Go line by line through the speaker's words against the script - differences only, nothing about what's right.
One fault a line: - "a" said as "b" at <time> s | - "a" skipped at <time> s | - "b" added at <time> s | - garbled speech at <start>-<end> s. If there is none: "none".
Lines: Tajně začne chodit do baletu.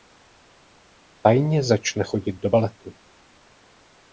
none